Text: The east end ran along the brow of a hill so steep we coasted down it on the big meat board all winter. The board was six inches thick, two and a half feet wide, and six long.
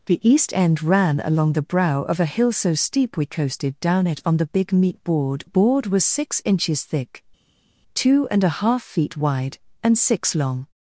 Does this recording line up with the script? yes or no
no